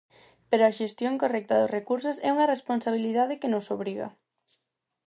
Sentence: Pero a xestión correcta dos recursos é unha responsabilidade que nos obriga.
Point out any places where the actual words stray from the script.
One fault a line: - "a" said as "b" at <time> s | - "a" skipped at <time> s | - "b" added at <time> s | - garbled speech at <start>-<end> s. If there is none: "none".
none